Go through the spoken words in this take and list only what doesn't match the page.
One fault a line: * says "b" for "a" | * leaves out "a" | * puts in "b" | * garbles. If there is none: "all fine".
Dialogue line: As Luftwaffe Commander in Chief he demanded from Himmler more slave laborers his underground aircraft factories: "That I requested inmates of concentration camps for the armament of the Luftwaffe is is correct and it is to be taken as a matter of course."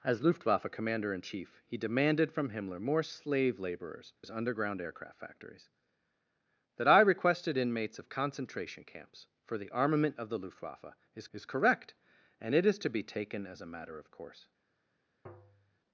all fine